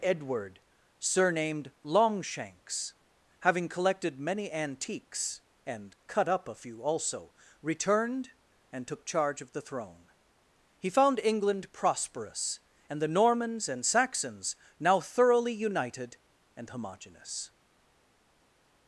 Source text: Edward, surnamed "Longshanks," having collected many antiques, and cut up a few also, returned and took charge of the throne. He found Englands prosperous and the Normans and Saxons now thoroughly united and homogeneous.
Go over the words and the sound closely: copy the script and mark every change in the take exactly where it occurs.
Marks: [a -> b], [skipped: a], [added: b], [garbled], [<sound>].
Edward, surnamed "Longshanks," having collected many antiques, and cut up a few also, returned and took charge of the throne. He found [Englands -> England] prosperous and the Normans and Saxons now thoroughly united and homogeneous.